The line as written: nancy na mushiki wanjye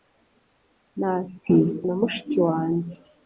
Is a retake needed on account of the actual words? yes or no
no